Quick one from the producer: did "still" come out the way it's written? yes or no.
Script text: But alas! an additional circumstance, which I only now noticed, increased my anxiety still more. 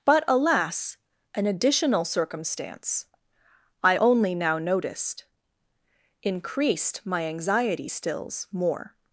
no